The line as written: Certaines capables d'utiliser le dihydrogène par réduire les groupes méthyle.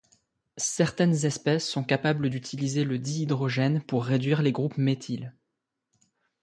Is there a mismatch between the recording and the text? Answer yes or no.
yes